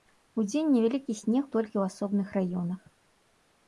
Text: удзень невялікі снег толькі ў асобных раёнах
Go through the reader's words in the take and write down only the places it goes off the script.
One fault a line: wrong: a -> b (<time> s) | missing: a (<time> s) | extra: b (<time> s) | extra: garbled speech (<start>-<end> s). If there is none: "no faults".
no faults